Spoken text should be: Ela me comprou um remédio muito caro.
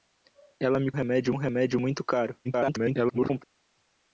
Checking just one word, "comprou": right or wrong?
wrong